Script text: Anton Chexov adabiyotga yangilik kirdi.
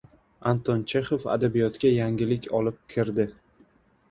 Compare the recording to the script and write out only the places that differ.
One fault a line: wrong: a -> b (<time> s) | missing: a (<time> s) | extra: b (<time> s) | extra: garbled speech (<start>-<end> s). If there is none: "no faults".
extra: olib (2.6 s)